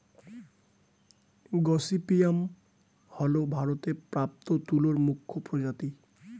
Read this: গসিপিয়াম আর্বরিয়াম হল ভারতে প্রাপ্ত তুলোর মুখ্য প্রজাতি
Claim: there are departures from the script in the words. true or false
true